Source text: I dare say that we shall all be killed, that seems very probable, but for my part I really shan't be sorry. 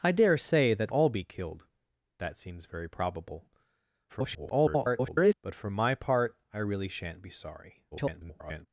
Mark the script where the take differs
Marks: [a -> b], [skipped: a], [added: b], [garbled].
I dare say that [skipped: we shall] all be killed, that seems very probable, [garbled] but for my part I really shan't be sorry. [garbled]